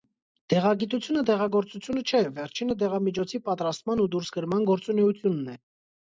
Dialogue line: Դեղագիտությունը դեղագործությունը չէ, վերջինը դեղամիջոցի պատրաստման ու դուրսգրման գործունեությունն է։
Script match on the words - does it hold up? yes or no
yes